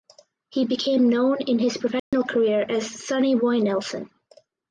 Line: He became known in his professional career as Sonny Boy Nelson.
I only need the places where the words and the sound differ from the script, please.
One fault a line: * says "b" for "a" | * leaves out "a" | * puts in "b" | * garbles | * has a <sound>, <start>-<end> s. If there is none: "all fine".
* has a dropout, 2.0-2.1 s